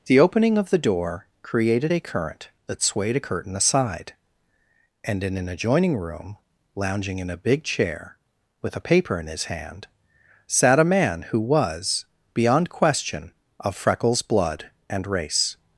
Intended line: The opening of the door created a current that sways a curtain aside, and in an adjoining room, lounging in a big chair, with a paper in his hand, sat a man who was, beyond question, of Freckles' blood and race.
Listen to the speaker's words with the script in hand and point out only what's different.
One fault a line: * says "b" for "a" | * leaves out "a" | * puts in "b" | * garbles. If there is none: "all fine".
* says "swayed" for "sways"